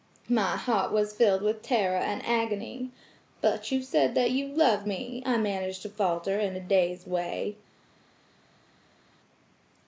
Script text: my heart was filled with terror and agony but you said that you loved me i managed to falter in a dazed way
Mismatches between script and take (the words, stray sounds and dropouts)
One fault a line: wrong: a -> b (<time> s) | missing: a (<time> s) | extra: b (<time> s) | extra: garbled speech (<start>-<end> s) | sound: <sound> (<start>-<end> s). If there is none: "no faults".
no faults